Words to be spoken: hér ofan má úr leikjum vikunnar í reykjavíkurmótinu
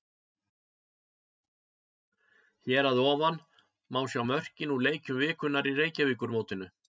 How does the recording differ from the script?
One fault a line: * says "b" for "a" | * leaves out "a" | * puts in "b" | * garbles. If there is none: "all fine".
* puts in "að"
* puts in "sjá mörkin"